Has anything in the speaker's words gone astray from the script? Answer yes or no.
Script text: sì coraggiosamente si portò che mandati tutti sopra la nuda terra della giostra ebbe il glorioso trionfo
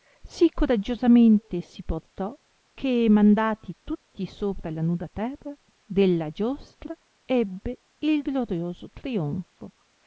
no